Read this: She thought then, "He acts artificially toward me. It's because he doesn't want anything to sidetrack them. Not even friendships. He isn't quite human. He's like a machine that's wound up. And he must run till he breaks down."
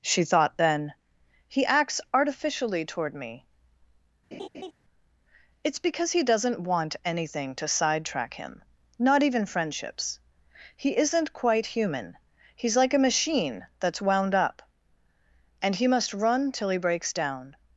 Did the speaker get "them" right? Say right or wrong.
wrong